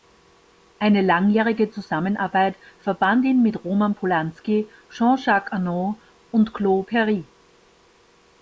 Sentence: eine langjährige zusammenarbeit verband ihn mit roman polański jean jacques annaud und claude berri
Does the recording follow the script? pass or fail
pass